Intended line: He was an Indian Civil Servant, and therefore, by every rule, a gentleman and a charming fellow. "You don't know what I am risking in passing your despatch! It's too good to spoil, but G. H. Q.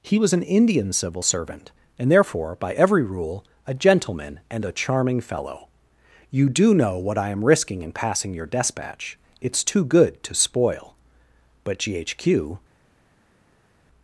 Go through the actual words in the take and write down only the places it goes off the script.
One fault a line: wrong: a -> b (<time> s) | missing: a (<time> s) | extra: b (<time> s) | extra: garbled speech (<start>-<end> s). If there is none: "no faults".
wrong: don't -> do (6.5 s)